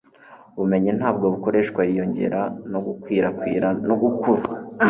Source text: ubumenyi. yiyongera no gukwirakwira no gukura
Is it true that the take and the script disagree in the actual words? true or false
true